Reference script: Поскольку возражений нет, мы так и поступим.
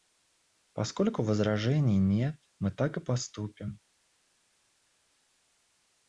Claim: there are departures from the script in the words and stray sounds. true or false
false